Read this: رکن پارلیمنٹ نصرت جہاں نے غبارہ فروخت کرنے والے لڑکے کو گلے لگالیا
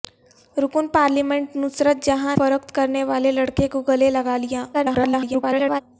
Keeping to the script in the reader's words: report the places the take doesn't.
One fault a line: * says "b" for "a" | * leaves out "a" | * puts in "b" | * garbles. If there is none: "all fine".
* leaves out "نے غبارہ"
* garbles